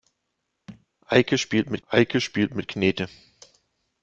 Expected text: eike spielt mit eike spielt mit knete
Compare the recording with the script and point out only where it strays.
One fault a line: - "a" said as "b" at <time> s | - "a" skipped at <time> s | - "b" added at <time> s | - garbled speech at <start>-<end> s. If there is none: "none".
none